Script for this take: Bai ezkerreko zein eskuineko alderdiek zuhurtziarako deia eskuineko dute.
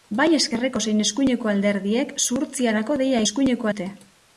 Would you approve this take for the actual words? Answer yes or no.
yes